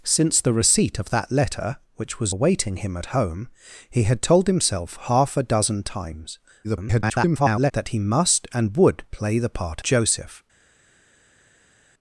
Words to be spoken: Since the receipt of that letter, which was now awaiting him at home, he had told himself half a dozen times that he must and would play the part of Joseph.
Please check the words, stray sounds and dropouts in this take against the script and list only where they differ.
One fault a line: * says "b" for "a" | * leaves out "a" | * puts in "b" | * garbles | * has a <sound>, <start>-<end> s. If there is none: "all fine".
* leaves out "now"
* garbles
* leaves out "of"